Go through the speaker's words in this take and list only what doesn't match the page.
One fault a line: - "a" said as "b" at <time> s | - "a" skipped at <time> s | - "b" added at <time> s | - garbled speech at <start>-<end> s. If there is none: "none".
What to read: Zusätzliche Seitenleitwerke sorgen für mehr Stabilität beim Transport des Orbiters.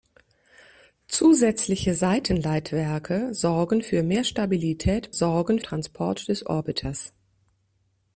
- "beim" said as "sorgen" at 5.1 s